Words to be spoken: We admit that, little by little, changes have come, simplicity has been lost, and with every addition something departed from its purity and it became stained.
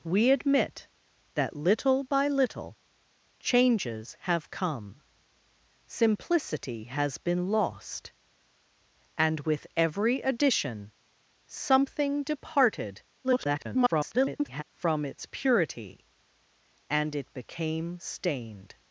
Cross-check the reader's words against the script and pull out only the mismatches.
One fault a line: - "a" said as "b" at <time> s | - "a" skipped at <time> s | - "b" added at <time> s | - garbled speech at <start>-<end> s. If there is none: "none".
- garbled speech at 13.2-14.6 s